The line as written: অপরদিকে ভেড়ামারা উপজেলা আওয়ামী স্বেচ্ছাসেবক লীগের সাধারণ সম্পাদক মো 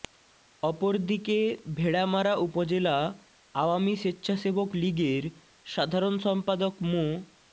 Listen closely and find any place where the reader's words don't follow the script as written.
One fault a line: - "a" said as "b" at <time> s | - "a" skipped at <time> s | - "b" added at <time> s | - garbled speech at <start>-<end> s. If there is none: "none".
none